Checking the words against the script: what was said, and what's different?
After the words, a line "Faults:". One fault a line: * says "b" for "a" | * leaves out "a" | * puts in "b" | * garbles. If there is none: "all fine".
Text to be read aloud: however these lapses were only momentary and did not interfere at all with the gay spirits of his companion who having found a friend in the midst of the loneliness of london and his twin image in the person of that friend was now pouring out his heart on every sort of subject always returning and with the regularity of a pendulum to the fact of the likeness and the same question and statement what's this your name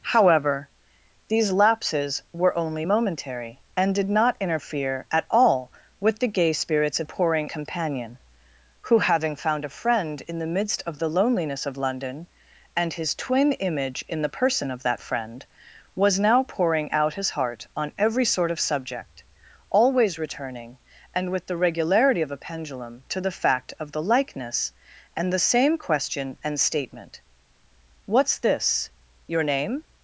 however these lapses were only momentary and did not interfere at all with the gay spirits of pouring companion who having found a friend in the midst of the loneliness of london and his twin image in the person of that friend was now pouring out his heart on every sort of subject always returning and with the regularity of a pendulum to the fact of the likeness and the same question and statement what's this your name
Faults:
* says "pouring" for "his"